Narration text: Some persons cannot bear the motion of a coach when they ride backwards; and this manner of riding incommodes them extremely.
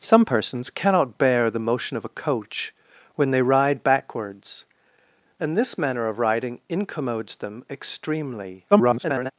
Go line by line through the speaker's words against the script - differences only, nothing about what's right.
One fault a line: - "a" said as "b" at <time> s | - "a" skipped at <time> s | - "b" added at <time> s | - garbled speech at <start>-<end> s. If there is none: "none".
- garbled speech at 8.7-9.3 s